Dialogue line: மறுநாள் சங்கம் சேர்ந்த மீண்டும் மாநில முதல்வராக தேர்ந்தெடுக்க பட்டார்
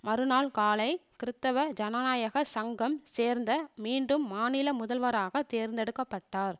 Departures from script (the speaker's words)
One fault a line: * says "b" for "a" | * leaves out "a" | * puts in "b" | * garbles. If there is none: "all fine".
* puts in "காலை கிறித்தவ ஜனநாயக"